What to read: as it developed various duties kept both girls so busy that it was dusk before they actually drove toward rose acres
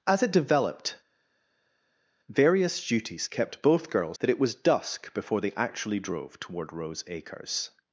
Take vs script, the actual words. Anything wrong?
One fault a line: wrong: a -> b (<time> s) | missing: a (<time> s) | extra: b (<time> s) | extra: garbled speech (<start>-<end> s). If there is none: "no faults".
missing: so busy (4.2 s)